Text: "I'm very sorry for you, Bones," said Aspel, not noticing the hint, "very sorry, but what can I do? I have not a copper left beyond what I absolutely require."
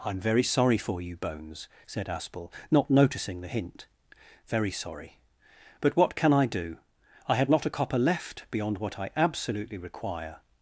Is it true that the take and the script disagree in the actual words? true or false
true